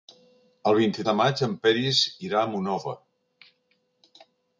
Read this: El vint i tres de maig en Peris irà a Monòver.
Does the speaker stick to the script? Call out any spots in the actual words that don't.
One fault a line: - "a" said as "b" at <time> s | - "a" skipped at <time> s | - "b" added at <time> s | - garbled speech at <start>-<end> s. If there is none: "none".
- "tres" skipped at 1.1 s